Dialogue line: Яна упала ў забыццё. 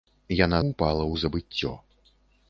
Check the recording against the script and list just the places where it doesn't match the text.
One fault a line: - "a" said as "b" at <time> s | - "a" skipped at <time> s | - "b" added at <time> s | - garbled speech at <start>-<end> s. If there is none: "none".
none